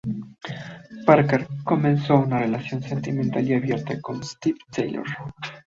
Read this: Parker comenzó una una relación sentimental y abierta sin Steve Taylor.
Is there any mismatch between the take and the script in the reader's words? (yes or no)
yes